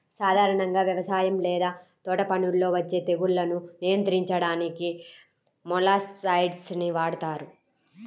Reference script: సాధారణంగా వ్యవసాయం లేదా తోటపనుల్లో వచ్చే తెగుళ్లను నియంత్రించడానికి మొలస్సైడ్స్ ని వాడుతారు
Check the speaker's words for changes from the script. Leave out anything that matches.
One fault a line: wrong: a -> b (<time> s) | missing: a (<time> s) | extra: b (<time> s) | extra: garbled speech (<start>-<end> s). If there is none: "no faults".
no faults